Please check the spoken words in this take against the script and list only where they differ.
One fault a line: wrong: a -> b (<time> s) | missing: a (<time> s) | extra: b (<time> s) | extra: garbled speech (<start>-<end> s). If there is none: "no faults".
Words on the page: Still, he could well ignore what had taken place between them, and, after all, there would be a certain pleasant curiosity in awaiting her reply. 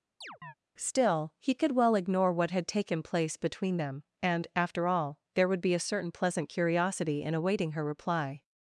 no faults